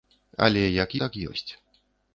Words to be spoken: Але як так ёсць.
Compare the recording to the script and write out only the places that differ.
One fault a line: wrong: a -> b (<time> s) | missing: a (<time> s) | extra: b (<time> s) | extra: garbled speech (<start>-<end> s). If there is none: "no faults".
no faults